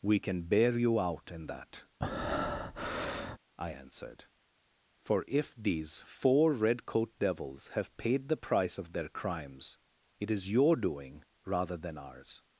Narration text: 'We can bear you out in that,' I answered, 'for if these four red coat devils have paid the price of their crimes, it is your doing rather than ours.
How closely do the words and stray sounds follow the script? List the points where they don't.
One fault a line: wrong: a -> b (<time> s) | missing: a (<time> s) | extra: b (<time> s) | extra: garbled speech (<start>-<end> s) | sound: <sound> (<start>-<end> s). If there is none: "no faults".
sound: breath (2.0-3.4 s)